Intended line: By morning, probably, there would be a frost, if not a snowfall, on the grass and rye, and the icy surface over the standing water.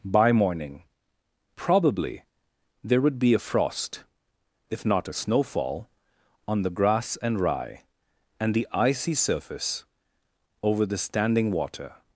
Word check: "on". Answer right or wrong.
right